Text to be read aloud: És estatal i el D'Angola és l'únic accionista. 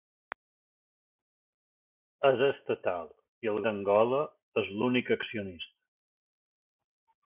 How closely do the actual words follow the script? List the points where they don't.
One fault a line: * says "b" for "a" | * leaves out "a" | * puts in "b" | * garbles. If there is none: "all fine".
all fine